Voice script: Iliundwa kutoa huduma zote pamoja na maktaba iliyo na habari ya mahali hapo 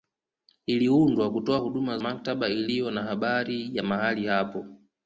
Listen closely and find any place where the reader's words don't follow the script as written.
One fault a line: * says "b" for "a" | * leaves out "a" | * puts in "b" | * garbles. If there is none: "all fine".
* leaves out "zote pamoja na"